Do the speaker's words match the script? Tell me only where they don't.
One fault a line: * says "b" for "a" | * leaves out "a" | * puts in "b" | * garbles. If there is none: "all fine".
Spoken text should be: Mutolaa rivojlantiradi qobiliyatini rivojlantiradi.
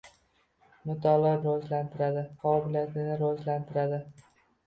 all fine